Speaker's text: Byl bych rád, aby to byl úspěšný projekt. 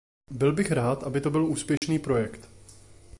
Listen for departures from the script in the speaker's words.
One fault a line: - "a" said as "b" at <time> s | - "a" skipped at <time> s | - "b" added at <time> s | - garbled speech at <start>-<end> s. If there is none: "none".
none